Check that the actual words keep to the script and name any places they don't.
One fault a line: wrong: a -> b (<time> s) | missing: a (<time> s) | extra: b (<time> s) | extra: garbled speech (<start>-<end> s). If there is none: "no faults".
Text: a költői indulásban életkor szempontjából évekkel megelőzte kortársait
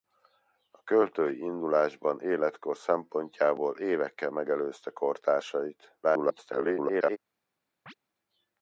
extra: garbled speech (6.0-7.2 s)